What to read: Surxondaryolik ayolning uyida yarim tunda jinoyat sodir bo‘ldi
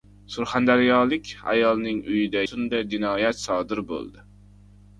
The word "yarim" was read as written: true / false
false